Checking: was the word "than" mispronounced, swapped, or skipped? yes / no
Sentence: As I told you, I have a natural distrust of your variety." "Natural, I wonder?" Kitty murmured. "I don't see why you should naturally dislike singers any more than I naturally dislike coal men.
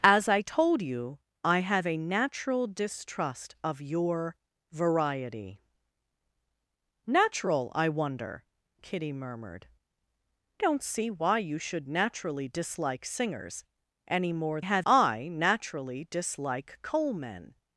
yes